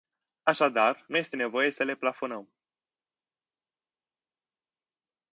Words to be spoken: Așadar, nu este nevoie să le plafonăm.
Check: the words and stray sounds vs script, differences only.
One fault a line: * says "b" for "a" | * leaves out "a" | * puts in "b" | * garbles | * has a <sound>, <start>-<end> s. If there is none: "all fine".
all fine